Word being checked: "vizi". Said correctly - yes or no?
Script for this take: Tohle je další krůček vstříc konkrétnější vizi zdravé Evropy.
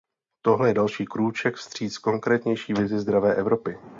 yes